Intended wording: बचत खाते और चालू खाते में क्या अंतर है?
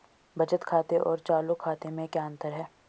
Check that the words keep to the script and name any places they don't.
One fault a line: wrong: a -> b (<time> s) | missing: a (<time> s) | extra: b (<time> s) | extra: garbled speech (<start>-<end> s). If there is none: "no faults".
no faults